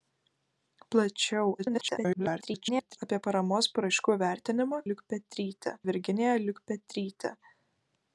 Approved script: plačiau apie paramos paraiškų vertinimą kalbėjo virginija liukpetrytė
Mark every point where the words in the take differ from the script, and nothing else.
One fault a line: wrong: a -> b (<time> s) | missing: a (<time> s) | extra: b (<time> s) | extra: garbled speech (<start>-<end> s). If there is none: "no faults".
extra: garbled speech (1.6-3.0 s)
wrong: kalbėjo -> liukpetrytė (4.9 s)